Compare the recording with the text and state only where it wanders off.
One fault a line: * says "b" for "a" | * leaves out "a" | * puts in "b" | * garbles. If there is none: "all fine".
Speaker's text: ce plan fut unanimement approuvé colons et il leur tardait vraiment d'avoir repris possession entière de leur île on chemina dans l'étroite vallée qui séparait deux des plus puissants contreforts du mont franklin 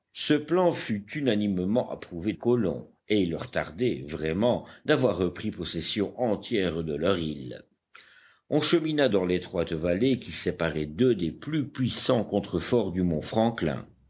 all fine